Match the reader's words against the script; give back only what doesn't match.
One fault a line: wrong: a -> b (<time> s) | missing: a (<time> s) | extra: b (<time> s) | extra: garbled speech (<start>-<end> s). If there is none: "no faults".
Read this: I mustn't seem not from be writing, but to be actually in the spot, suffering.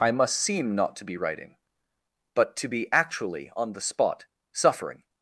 wrong: mustn't -> must (0.1 s)
wrong: from -> to (0.9 s)
wrong: in -> on (3.6 s)